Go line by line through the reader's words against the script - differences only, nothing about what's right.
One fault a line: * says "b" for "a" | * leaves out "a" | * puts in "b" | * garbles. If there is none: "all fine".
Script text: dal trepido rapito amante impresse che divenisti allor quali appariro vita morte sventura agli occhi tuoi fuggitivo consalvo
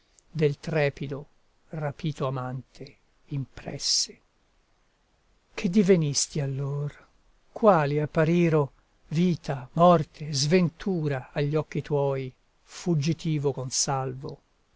* says "del" for "dal"